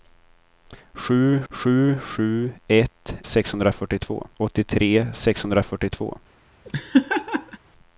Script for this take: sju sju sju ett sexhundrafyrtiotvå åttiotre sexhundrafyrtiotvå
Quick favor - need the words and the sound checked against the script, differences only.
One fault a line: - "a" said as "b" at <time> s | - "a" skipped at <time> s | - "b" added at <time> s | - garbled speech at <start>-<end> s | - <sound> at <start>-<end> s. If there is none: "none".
- laugh at 6.6-7.6 s